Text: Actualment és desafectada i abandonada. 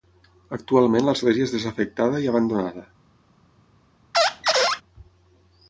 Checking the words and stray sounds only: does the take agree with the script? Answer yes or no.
no